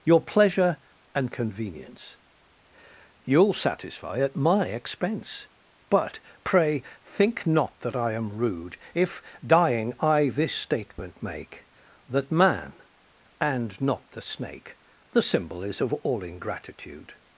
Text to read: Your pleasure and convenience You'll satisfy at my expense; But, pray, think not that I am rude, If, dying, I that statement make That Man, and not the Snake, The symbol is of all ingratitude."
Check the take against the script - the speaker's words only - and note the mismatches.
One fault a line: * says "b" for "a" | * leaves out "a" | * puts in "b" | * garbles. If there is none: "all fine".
* says "this" for "that"